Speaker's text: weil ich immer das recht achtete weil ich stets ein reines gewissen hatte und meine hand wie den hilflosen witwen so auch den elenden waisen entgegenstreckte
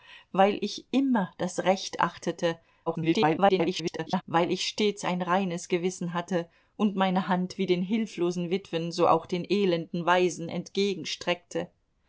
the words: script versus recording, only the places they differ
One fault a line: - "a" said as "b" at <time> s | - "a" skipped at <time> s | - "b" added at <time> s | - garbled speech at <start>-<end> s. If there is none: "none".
- garbled speech at 2.9-4.2 s